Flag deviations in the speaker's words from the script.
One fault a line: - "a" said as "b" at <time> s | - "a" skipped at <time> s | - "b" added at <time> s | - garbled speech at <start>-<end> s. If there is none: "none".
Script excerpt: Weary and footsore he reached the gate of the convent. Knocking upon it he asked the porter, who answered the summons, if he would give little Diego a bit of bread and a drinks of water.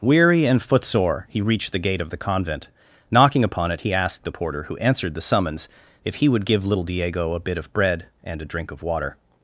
- "drinks" said as "drink" at 8.5 s